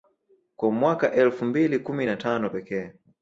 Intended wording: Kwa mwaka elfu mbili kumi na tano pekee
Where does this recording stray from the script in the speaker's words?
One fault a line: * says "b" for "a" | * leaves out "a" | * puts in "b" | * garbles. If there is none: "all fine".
all fine